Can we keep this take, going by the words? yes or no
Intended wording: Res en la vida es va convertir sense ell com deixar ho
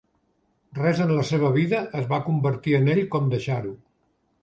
no